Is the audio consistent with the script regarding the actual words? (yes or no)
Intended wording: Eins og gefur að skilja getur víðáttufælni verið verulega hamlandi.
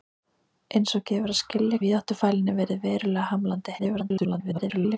no